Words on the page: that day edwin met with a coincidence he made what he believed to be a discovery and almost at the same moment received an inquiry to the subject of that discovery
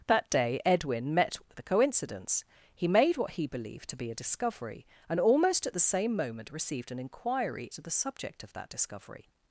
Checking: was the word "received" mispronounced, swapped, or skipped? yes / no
no